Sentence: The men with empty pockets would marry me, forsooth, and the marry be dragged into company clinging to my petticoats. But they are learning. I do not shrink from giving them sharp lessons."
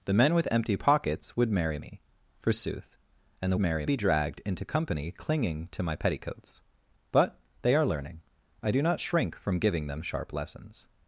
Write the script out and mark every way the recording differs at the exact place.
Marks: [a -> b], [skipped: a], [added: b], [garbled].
The men with empty pockets would marry me, forsooth, and the marry be dragged into company clinging to my petticoats. But they are learning. I do not shrink from giving them sharp lessons."